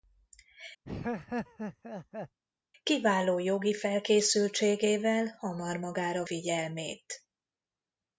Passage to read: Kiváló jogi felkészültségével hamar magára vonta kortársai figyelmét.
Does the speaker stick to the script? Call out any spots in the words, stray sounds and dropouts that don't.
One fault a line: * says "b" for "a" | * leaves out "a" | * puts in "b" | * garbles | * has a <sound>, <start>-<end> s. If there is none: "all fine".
* has a laugh, 0.8-2.4 s
* leaves out "vonta kortársai"